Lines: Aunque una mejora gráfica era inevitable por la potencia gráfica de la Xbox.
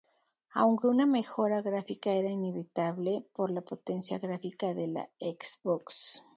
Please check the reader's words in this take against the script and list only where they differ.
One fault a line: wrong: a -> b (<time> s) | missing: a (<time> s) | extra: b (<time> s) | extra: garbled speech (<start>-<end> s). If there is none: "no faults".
no faults